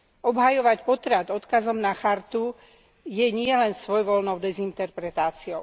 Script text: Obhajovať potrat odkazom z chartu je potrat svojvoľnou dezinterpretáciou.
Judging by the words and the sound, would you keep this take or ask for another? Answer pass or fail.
fail